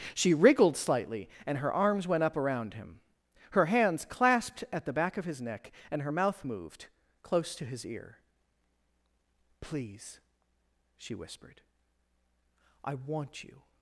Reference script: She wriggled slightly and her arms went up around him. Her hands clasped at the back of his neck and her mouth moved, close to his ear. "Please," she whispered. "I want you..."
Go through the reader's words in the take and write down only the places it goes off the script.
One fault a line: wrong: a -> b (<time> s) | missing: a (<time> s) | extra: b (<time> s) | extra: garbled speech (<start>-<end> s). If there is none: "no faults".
no faults